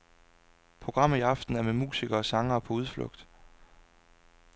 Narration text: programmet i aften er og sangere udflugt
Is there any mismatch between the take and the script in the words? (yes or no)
yes